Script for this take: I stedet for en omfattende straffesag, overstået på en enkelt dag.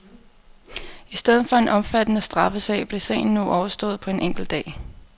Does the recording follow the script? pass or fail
fail